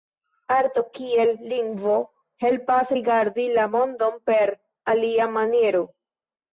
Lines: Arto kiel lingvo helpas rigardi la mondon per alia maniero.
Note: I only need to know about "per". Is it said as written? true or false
true